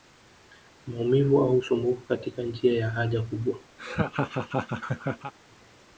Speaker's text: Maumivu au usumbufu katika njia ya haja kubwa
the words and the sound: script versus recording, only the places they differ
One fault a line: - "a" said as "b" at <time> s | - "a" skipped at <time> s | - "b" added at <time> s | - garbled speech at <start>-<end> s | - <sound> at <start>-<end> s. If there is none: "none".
- laugh at 3.8-5.3 s